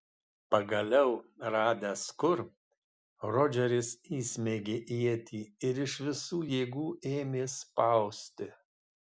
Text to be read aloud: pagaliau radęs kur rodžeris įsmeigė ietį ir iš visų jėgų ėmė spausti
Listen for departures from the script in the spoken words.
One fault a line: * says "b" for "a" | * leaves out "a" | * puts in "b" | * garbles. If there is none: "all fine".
all fine